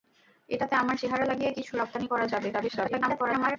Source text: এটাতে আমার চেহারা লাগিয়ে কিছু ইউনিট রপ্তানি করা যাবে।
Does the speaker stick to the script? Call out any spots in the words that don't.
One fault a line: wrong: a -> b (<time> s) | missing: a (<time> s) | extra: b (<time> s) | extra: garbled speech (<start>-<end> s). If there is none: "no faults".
missing: ইউনিট (1.7 s)
extra: garbled speech (2.5-3.6 s)